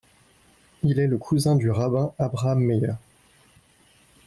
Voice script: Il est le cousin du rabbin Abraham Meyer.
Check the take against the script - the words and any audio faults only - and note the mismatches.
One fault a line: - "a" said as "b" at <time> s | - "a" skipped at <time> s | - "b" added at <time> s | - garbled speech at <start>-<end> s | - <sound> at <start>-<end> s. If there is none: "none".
none